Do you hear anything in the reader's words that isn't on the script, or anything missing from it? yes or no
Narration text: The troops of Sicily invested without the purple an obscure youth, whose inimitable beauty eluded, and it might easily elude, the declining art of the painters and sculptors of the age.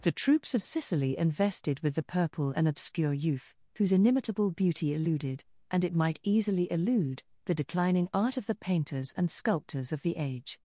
yes